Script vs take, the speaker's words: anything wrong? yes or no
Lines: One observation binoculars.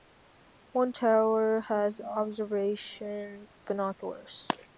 yes